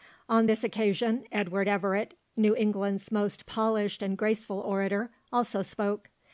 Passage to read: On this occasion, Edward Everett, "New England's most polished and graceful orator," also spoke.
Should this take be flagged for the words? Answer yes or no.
no